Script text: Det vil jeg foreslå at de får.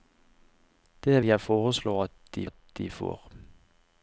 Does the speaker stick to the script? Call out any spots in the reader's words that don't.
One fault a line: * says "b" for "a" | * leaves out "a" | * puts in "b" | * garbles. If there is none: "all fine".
* leaves out "vil"
* puts in "at de"